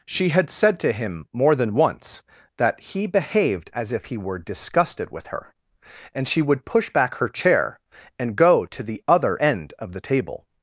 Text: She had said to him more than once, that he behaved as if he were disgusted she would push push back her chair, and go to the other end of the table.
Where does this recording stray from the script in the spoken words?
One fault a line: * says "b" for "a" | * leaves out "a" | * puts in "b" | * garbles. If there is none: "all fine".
* puts in "with her and"
* leaves out "push"